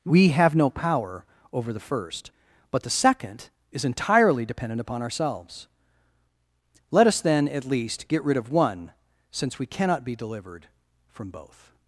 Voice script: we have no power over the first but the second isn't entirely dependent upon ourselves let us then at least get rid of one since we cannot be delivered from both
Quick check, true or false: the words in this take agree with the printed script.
false